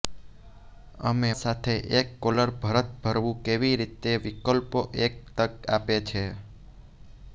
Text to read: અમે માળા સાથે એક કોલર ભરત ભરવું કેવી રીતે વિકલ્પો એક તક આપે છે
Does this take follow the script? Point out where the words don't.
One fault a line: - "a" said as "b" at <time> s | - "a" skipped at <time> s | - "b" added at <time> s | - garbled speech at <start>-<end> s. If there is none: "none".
- "માળા" skipped at 1.3 s